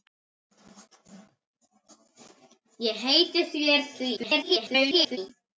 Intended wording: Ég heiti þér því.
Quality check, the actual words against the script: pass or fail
fail